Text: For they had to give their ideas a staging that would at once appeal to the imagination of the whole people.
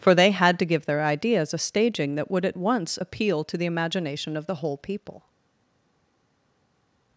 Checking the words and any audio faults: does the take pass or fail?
pass